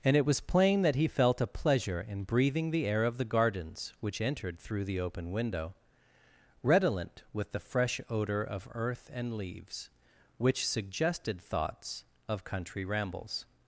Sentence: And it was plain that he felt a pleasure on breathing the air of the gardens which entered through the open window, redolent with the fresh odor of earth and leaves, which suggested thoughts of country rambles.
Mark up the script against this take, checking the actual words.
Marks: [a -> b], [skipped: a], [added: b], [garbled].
And it was plain that he felt a pleasure [on -> in] breathing the air of the gardens which entered through the open window, redolent with the fresh odor of earth and leaves, which suggested thoughts of country rambles.